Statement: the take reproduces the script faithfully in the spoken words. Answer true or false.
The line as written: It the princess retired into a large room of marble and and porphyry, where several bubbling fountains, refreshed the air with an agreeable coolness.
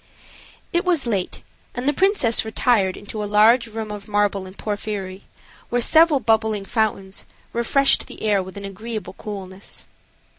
false